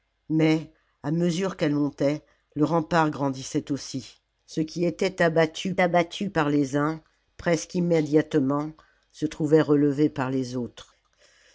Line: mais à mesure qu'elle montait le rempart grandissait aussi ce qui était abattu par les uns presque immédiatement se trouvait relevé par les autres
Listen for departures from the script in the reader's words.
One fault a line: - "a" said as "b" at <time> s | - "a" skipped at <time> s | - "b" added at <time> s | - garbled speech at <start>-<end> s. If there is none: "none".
- "abattu" added at 5.8 s